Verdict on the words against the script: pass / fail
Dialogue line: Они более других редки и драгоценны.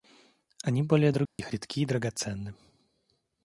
pass